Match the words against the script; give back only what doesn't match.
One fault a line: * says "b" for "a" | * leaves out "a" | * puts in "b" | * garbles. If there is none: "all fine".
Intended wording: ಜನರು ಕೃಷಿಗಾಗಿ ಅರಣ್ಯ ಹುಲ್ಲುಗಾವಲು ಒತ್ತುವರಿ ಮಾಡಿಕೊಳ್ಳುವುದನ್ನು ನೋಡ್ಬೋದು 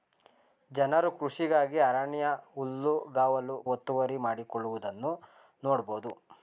all fine